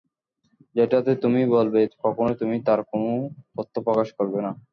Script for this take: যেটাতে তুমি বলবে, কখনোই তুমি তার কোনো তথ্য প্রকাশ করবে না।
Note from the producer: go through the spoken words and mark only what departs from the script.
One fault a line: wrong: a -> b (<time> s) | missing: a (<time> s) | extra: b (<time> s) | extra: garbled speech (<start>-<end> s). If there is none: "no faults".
no faults